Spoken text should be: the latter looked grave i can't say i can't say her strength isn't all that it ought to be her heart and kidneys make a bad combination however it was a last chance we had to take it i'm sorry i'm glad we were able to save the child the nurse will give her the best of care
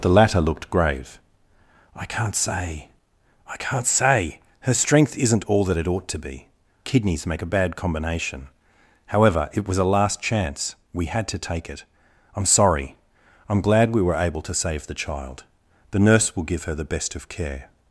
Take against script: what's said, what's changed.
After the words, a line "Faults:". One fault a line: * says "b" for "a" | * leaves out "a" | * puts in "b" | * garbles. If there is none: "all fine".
the latter looked grave i can't say i can't say her strength isn't all that it ought to be kidneys make a bad combination however it was a last chance we had to take it i'm sorry i'm glad we were able to save the child the nurse will give her the best of care
Faults:
* leaves out "her heart and"